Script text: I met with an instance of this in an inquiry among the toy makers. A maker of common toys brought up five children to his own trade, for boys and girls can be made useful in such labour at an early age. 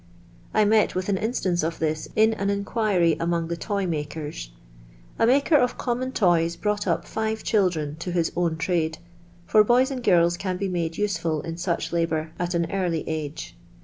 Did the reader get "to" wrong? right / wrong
right